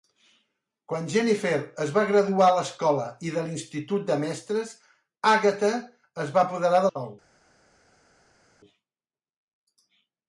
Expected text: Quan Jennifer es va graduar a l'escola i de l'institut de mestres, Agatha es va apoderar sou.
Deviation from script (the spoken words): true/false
false